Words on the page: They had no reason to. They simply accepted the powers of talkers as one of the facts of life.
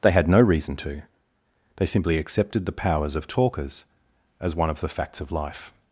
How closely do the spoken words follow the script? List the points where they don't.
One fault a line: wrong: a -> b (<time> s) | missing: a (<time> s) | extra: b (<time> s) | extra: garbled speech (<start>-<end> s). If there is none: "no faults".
no faults